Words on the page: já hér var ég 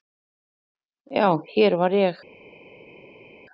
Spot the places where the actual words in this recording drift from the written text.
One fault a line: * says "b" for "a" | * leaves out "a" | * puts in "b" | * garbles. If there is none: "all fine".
all fine